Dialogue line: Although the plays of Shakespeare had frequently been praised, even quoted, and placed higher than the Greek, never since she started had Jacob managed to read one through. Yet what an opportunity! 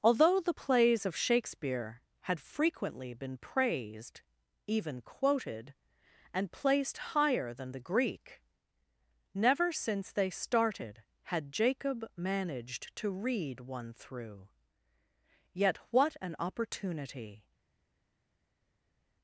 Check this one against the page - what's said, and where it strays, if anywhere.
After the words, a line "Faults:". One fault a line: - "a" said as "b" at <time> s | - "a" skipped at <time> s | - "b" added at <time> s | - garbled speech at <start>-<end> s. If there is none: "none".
Although the plays of Shakespeare had frequently been praised, even quoted, and placed higher than the Greek, never since they started had Jacob managed to read one through. Yet what an opportunity!
Faults:
- "she" said as "they" at 10.1 s